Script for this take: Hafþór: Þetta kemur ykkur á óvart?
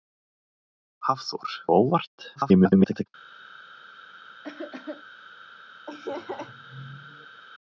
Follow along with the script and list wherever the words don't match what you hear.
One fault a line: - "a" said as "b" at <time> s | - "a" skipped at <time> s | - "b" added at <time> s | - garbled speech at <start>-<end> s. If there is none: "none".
- "Þetta kemur ykkur" skipped at 1.5 s
- garbled speech at 2.4-3.1 s